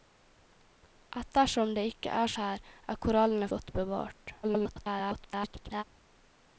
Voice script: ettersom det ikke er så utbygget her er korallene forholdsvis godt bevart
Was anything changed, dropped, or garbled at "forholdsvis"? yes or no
yes